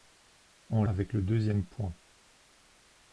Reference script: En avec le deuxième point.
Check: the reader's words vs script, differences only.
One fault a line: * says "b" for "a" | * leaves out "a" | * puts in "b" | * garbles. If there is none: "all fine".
all fine